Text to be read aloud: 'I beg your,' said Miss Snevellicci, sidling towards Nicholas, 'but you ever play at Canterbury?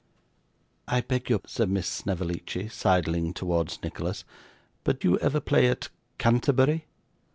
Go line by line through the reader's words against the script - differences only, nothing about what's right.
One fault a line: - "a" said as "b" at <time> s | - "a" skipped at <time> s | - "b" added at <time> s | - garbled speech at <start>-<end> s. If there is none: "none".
none